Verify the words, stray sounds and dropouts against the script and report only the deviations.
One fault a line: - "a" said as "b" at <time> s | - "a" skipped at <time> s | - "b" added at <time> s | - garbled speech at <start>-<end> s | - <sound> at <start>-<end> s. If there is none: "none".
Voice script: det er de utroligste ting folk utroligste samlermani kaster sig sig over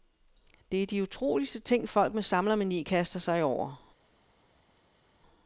- "utroligste" said as "med" at 2.1 s
- "sig" skipped at 3.4 s